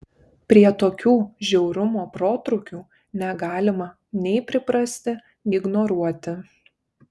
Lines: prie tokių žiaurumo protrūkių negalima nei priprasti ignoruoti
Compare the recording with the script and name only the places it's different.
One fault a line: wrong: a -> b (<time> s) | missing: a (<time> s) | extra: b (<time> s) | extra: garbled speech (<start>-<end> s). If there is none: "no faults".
no faults